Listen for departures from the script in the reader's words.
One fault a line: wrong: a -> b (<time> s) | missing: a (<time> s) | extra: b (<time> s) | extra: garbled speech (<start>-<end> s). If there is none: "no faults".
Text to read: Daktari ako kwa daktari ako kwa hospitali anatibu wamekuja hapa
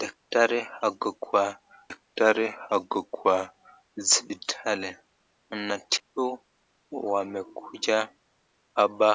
no faults